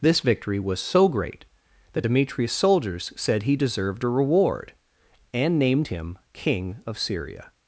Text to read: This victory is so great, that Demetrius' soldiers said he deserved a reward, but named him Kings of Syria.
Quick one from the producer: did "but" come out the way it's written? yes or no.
no